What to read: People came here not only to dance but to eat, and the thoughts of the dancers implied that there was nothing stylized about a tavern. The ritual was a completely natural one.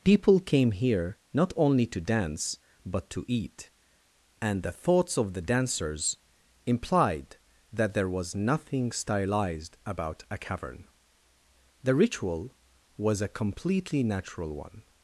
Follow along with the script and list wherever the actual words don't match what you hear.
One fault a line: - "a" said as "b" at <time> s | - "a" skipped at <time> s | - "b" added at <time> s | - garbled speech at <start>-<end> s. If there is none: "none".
- "tavern" said as "cavern" at 10.4 s